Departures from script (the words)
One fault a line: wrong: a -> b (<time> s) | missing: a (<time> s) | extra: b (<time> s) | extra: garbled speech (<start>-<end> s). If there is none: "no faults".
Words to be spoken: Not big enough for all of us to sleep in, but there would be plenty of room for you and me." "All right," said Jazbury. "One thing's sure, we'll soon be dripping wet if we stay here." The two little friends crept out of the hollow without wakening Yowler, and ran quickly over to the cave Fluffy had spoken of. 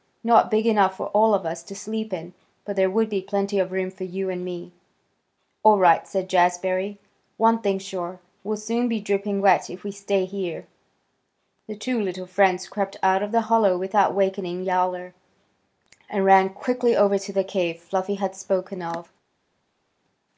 no faults